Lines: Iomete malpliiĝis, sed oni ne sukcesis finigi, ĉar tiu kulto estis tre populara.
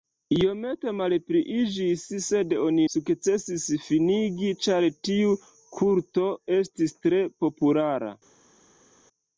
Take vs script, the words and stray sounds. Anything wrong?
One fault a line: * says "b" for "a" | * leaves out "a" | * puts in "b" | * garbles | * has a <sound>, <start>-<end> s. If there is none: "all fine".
* leaves out "ne"